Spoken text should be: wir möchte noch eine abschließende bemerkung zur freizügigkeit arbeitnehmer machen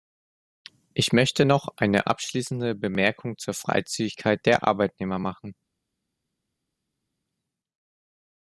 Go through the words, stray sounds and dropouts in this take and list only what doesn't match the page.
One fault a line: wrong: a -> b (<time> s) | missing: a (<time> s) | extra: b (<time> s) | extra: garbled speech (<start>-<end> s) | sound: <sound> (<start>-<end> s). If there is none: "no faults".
wrong: wir -> ich (0.9 s)
extra: der (4.5 s)